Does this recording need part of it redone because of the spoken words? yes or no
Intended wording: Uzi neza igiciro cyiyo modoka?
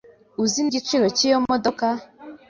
yes